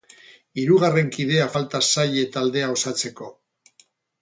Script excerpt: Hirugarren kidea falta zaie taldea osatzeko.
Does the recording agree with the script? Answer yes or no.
yes